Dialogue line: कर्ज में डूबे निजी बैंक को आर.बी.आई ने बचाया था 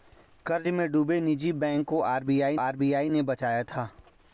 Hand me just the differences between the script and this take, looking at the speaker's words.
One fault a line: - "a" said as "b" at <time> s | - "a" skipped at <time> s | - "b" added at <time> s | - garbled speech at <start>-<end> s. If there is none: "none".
- "आर.बी.आई" added at 2.6 s